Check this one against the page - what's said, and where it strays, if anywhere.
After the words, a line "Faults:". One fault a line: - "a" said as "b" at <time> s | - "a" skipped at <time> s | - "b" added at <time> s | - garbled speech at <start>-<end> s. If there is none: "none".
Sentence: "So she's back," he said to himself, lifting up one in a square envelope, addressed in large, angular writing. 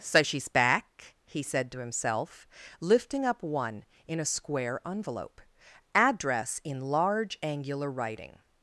"So she's back," he said to himself, lifting up one in a square envelope, address in large, angular writing.
Faults:
- "addressed" said as "address" at 5.9 s